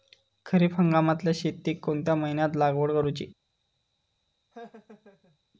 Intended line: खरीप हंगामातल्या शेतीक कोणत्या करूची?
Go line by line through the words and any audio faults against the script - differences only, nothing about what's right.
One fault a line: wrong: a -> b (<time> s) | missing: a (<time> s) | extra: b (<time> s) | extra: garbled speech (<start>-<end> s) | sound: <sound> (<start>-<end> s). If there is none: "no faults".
extra: महिन्यात लागवड (2.1 s)
sound: laugh (4.5-5.4 s)